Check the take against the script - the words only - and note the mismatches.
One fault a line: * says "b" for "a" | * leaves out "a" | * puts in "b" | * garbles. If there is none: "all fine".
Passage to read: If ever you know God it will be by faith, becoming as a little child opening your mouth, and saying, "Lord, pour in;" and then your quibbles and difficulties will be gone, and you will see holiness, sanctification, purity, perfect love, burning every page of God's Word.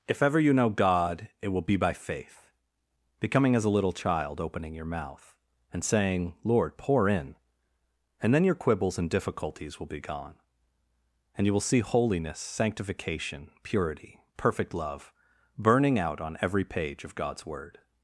* puts in "out on"